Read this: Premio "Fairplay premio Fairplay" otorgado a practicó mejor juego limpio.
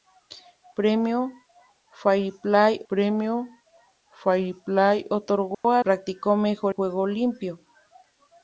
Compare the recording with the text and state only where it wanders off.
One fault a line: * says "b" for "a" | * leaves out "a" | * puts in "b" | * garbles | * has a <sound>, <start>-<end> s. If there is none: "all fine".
* has a dropout, 5.5-5.6 s